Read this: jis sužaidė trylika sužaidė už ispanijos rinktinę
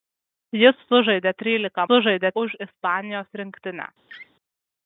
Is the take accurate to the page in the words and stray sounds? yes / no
no